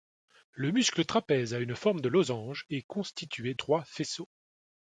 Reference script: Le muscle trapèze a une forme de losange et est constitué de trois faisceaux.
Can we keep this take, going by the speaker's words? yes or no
no